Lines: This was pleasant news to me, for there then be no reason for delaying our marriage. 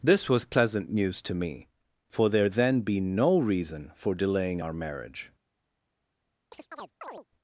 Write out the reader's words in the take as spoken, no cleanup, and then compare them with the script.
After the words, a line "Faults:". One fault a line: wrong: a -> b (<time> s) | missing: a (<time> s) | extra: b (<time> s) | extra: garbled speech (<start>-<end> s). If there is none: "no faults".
This was pleasant news to me, for there then be no reason for delaying our marriage.
Faults:
no faults